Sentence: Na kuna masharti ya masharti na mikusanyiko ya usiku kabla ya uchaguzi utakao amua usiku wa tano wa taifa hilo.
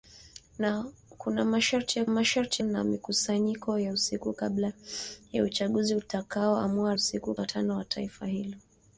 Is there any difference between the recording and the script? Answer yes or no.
no